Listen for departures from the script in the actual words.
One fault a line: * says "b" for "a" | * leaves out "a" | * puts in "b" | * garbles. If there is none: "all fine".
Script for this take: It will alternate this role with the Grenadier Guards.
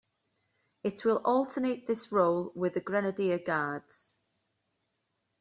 all fine